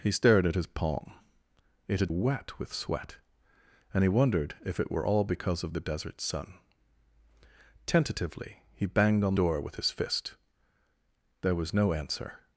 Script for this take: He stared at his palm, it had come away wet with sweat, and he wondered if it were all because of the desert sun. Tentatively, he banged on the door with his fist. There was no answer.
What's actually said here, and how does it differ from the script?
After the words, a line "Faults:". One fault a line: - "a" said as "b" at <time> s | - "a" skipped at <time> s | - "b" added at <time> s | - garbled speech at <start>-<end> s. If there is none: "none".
He stared at his palm, it had wet with sweat, and he wondered if it were all because of the desert sun. Tentatively, he banged on door with his fist. There was no answer.
Faults:
- "come away" skipped at 2.1 s
- "the" skipped at 9.4 s